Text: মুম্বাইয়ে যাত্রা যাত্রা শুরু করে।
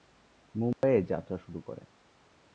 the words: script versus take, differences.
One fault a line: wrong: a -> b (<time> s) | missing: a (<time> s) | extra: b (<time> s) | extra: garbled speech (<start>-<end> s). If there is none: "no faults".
missing: যাত্রা (1.4 s)